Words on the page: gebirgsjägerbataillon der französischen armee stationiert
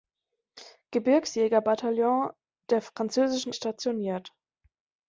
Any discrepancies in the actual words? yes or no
yes